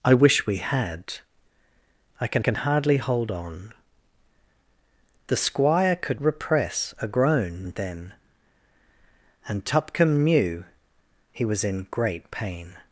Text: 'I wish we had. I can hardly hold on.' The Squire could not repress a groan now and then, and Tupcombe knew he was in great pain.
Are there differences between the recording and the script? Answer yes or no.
yes